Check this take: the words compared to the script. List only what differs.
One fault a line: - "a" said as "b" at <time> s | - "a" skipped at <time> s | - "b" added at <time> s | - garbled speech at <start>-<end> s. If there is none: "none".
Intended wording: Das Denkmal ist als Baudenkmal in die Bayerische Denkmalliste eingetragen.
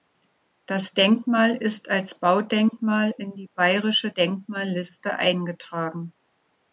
none